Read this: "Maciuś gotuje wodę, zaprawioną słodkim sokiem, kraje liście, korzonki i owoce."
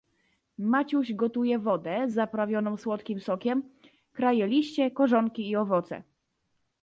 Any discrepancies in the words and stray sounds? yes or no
no